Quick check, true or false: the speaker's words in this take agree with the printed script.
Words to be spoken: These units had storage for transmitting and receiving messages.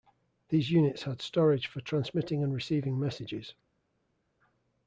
true